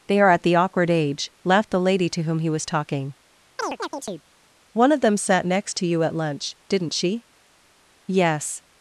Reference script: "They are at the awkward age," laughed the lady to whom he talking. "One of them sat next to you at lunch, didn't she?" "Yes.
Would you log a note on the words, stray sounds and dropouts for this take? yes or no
yes